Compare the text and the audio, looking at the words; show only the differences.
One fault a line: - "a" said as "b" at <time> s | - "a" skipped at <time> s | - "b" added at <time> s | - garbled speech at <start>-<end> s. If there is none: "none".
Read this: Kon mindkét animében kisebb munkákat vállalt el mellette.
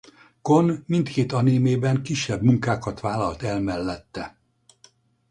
none